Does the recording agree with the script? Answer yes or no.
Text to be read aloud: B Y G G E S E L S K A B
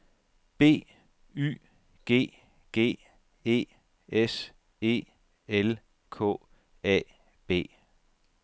no